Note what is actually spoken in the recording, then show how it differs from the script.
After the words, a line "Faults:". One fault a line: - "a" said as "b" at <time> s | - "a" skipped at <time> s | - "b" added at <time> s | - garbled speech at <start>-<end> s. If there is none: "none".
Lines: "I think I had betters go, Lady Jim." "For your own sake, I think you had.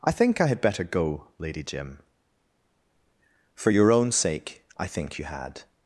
"I think I had better go, Lady Jim." "For your own sake, I think you had.
Faults:
- "betters" said as "better" at 0.6 s